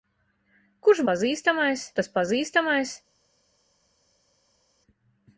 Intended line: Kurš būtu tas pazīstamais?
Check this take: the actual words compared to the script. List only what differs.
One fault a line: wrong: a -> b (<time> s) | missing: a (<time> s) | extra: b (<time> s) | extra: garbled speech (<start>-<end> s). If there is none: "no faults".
wrong: būtu -> pazīstamais (1.1 s)